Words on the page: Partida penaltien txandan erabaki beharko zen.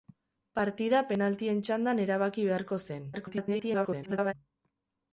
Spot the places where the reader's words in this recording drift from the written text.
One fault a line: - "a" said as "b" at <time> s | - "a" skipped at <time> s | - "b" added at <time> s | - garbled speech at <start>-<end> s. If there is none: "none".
- garbled speech at 3.1-4.3 s